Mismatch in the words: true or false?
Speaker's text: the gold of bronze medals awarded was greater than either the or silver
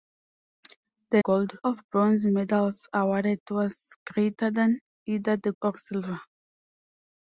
false